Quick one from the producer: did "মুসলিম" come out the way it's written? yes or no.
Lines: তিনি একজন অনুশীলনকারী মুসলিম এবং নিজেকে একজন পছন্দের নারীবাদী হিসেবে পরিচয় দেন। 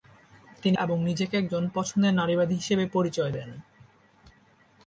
no